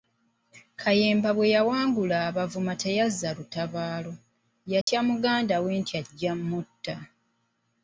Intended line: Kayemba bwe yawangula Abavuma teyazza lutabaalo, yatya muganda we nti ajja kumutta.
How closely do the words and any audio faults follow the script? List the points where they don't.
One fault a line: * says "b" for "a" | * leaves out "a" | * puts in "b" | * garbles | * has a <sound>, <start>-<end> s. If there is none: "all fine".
* has a dropout, 4.8-4.9 s